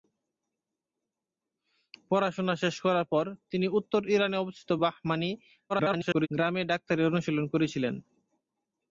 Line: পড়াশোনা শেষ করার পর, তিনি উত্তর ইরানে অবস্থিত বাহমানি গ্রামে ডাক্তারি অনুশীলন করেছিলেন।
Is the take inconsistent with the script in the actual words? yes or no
yes